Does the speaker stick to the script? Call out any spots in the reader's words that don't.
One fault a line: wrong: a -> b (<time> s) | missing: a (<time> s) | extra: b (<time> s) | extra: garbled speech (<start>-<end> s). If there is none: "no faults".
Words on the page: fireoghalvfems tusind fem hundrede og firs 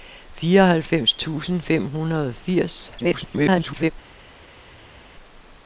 extra: garbled speech (3.0-3.9 s)